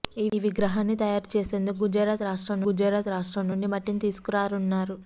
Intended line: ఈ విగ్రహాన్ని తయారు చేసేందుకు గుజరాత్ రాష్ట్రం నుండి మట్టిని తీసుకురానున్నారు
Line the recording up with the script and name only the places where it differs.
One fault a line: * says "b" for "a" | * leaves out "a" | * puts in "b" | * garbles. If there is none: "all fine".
* puts in "గుజరాత్ రాష్ట్రం"